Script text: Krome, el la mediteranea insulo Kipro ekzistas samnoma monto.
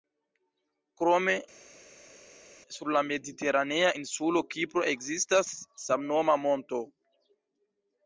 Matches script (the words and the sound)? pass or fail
fail